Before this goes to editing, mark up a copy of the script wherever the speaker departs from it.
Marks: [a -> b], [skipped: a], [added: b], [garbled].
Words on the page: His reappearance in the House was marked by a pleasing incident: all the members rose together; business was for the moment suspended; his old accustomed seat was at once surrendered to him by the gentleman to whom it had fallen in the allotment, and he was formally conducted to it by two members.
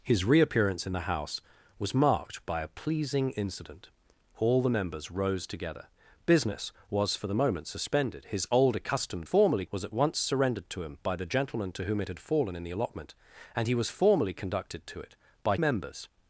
His reappearance in the House was marked by a pleasing incident: all the members rose together; business was for the moment suspended; his old accustomed [seat -> formally] was at once surrendered to him by the gentleman to whom it had fallen in the allotment, and he was formally conducted to it by [skipped: two] members.